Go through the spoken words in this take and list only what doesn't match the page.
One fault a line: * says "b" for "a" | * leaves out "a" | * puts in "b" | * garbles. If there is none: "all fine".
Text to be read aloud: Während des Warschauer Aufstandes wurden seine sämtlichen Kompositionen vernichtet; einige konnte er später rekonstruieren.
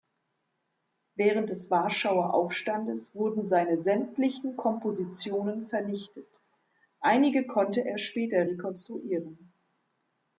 all fine